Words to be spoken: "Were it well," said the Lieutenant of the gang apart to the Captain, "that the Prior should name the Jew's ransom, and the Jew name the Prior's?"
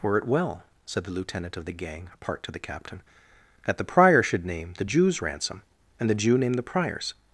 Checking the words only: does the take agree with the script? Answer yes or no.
yes